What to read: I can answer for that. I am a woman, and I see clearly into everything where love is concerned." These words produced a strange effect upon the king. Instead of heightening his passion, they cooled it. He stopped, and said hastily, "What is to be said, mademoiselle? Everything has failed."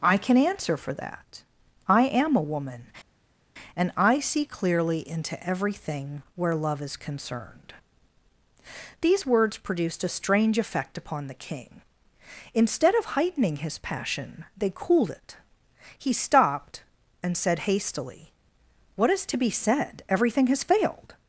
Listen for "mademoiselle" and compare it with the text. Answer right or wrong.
wrong